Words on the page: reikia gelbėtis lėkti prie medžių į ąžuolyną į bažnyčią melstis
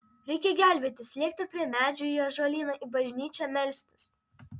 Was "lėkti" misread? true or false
false